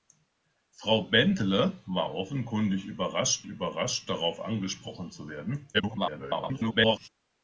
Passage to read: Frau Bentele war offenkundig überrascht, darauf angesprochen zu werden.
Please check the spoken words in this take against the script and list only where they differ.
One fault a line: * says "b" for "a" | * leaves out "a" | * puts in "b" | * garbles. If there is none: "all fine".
* puts in "überrascht"
* garbles